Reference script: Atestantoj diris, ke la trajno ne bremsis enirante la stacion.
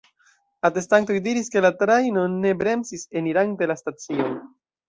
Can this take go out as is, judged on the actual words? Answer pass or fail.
pass